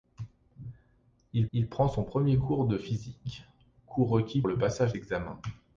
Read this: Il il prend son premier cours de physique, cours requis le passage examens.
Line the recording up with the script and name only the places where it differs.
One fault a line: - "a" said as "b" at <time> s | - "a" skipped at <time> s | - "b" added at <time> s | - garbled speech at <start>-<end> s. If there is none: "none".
none